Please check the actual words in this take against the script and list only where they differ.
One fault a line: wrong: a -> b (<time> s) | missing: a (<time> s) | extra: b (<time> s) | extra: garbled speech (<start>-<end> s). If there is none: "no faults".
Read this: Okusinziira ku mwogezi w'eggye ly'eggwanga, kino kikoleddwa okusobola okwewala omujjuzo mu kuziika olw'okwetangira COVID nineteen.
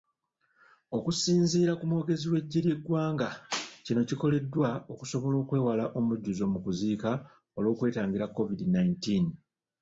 no faults